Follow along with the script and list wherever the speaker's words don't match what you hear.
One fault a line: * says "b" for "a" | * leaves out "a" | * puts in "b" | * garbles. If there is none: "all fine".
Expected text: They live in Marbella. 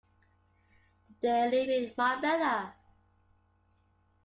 all fine